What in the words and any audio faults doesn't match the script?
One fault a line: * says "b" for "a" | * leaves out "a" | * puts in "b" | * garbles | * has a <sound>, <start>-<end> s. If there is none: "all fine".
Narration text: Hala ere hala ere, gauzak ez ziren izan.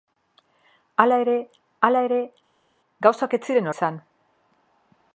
all fine